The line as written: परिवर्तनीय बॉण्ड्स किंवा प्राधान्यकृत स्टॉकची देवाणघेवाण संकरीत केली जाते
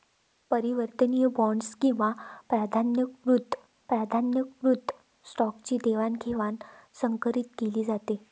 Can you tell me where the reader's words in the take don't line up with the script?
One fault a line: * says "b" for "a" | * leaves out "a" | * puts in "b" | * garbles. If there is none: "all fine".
* puts in "प्राधान्यकृत"